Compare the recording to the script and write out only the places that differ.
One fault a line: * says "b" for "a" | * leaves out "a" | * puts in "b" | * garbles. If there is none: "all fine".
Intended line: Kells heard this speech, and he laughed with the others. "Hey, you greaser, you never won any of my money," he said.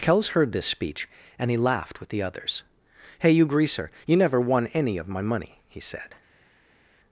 all fine